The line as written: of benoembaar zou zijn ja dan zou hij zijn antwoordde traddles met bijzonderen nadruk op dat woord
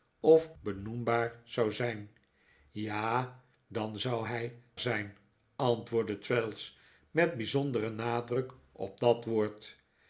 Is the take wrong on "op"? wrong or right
right